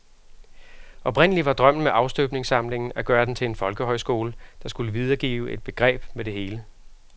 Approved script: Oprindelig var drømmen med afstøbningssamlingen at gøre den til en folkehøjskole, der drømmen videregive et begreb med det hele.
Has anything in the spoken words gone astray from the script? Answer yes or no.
yes